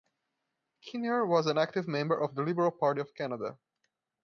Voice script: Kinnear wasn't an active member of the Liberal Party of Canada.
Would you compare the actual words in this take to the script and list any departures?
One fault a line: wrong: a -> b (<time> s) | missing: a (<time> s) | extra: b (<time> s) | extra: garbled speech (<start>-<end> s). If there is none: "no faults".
wrong: wasn't -> was (1.3 s)